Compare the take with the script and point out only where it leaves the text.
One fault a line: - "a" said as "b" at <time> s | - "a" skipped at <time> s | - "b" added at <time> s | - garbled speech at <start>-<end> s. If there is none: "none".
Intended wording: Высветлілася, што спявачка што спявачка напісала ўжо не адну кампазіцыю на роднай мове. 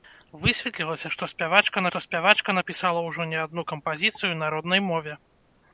none